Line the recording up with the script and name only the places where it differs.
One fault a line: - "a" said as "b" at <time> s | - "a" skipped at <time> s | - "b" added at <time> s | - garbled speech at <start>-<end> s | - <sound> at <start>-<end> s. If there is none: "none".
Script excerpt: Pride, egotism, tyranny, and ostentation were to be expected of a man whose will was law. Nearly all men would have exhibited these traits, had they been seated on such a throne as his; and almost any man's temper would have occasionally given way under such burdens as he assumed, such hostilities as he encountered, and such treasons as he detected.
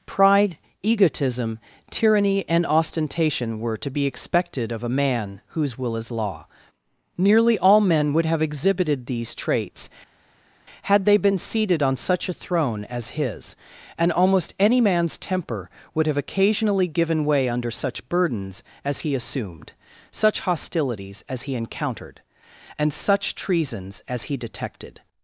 - "was" said as "is" at 6.0 s